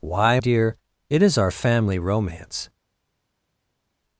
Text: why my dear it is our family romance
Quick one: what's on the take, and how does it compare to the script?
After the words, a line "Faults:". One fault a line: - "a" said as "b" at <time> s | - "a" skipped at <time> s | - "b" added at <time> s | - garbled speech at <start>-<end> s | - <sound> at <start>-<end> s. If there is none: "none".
why dear it is our family romance
Faults:
- "my" skipped at 0.4 s